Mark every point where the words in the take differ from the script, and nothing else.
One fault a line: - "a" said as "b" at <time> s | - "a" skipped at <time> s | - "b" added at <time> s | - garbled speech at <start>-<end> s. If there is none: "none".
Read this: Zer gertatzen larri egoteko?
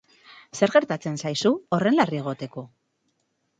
- "zaizu horren" added at 1.2 s